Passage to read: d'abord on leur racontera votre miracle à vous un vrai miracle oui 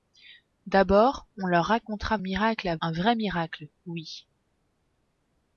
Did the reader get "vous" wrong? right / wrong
wrong